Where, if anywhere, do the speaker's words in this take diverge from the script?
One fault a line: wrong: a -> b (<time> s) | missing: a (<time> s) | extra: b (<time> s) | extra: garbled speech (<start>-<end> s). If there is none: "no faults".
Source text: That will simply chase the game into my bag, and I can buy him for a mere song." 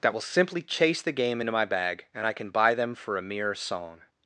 wrong: him -> them (2.7 s)